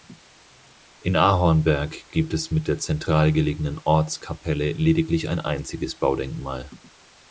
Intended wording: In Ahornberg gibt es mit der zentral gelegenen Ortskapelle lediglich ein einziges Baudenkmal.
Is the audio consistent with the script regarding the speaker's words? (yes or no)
yes